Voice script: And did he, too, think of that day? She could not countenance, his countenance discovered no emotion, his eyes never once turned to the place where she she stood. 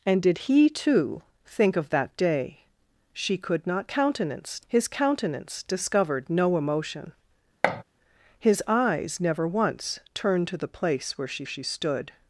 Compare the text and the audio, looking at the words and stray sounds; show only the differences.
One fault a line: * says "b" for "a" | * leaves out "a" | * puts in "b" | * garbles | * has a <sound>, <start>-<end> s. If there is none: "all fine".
* has a thud, 7.6-7.8 s